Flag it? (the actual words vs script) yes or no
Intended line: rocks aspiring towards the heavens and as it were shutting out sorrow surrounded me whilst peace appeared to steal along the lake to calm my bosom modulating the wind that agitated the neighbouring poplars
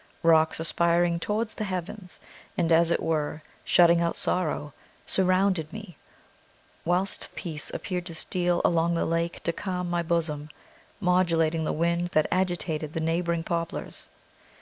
no